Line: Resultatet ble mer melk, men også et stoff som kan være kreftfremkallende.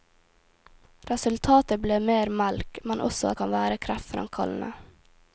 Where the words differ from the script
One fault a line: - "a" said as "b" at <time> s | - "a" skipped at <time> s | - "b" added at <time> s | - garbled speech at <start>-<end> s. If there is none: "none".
- "et stoff som" skipped at 3.4 s